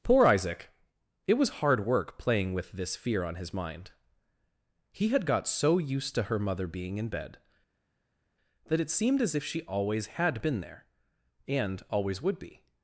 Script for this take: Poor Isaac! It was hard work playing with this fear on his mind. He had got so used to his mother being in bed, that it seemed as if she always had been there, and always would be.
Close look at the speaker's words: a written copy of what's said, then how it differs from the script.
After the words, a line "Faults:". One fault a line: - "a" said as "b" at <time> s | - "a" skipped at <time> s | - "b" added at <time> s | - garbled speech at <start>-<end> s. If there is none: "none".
Poor Isaac! It was hard work playing with this fear on his mind. He had got so used to her mother being in bed, that it seemed as if she always had been there, and always would be.
Faults:
- "his" said as "her" at 6.2 s